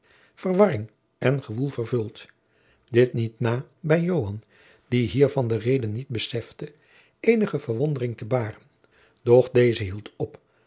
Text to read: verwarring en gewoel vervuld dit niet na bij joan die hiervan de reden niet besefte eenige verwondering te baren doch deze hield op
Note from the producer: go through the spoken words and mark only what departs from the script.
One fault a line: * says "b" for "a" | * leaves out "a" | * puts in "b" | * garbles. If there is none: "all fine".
all fine